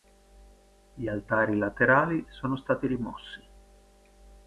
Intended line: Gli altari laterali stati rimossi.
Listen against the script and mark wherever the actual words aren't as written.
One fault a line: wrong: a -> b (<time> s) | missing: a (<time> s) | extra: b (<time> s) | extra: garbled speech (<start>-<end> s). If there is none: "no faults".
extra: sono (2.3 s)